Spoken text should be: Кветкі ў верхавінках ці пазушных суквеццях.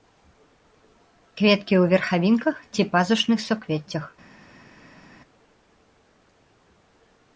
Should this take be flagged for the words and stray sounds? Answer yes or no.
no